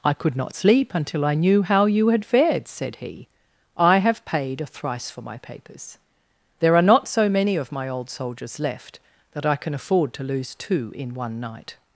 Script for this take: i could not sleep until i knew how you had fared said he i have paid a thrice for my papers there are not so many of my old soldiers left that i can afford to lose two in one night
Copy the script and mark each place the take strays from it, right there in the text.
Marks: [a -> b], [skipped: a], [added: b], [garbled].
i could not sleep until i knew how you had fared said he i have paid a thrice for my papers there are not so many of my old soldiers left that i can afford to lose two in one night